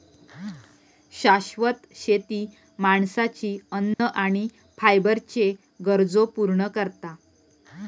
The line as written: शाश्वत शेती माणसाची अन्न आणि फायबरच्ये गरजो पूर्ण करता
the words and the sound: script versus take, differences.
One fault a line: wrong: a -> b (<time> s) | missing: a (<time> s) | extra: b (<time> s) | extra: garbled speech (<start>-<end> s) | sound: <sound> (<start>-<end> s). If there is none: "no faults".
sound: dropout (3.9-4.0 s)